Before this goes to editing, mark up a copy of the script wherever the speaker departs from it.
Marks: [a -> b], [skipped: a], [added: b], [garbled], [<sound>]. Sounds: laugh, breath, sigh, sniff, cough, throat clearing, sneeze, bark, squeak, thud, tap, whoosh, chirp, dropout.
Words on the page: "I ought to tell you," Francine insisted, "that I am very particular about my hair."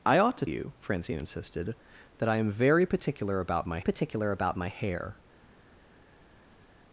"I ought to [skipped: tell] you," Francine insisted, "that I am very particular about my [added: particular about my] hair."